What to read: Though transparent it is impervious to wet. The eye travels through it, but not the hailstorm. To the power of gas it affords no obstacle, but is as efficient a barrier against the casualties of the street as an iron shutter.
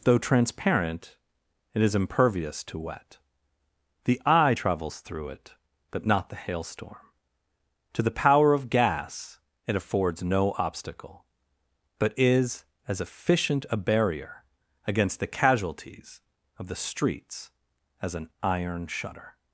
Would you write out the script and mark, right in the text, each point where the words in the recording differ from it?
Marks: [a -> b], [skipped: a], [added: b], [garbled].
Though transparent it is impervious to wet. The eye travels through it, but not the hailstorm. To the power of gas it affords no obstacle, but is as efficient a barrier against the casualties of the [street -> streets] as an iron shutter.